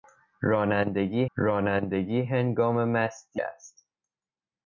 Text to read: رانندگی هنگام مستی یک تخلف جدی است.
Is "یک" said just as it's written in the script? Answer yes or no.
no